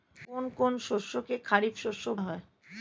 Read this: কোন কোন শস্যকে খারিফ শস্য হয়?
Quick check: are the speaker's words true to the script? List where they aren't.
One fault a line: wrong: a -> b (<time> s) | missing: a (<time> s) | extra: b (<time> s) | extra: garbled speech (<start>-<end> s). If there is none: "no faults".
no faults